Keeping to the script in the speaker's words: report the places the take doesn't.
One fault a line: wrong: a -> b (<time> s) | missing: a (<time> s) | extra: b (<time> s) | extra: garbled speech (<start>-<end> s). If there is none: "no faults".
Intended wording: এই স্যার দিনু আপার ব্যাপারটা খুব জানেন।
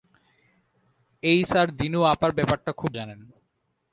no faults